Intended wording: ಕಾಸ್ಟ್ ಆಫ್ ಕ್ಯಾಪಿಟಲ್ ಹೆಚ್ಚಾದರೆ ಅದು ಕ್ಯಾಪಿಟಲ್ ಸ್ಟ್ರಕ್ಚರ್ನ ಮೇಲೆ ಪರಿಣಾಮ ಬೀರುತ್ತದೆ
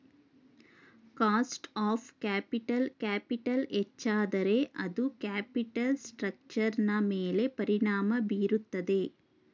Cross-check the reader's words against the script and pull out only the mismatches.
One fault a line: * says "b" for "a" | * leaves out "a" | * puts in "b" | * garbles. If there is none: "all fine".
* puts in "ಕ್ಯಾಪಿಟಲ್"